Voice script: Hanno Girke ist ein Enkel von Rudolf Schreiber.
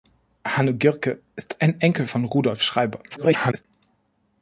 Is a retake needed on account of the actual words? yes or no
yes